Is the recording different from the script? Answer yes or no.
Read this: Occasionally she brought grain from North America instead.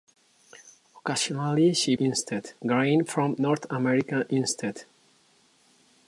yes